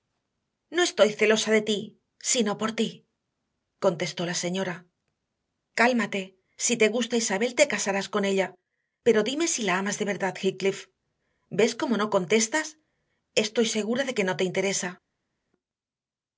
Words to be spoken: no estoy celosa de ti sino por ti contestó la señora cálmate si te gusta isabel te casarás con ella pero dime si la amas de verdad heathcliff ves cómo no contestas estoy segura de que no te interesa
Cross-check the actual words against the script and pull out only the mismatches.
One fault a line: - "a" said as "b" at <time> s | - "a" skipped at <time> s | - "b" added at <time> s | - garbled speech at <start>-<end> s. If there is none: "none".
none